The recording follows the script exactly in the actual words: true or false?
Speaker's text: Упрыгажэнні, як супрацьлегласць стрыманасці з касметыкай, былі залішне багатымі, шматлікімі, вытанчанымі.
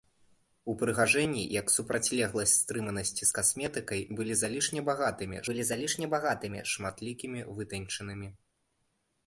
false